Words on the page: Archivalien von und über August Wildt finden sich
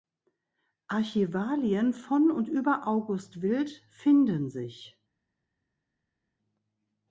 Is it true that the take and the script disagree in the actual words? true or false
false